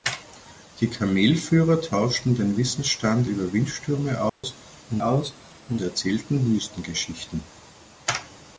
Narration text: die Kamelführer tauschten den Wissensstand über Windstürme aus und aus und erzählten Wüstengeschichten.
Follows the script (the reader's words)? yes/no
yes